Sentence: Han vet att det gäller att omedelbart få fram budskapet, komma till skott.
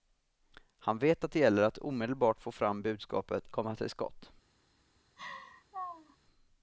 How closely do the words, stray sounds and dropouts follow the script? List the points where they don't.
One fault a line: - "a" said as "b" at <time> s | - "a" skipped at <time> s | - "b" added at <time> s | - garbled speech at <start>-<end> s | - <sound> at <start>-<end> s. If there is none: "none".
- laugh at 5.2-6.2 s